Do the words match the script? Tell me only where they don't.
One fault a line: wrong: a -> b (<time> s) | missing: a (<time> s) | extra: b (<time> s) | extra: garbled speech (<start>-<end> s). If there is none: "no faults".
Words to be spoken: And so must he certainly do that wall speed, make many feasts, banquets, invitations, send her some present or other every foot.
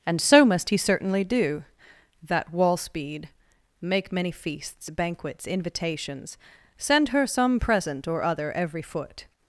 no faults